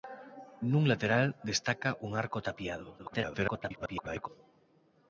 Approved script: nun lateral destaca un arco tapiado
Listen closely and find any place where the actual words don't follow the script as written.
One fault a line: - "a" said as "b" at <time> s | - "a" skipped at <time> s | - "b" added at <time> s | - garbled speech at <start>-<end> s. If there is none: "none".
- garbled speech at 3.0-4.3 s